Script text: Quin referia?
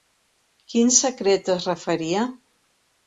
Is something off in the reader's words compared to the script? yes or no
yes